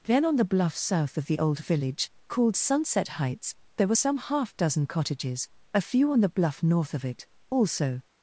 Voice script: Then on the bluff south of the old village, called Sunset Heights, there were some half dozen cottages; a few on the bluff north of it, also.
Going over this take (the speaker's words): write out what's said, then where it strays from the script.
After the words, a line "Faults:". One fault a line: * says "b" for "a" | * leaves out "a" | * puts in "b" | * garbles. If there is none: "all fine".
Then on the bluff south of the old village, called Sunset Heights, there were some half dozen cottages; a few on the bluff north of it, also.
Faults:
all fine